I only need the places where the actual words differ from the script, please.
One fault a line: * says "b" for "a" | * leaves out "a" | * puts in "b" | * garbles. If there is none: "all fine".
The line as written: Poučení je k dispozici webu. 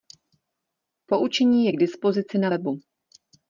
* puts in "na"